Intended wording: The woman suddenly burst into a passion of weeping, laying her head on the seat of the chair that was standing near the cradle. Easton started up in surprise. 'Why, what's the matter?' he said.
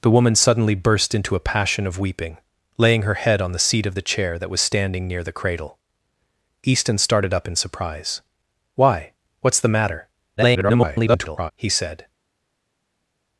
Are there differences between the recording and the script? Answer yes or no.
yes